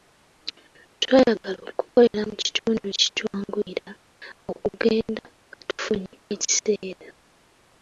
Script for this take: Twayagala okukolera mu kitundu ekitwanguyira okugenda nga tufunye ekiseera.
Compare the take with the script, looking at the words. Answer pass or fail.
pass